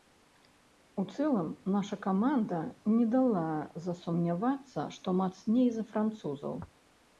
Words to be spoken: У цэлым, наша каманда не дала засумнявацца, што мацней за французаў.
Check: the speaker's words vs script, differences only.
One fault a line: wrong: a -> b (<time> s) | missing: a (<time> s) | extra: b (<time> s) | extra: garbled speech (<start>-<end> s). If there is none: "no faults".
no faults